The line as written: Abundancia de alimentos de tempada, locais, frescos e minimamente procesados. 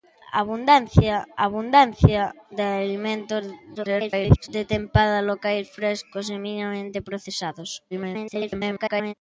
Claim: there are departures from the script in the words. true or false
true